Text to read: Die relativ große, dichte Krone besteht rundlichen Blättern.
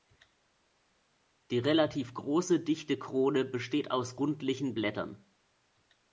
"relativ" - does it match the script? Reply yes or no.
yes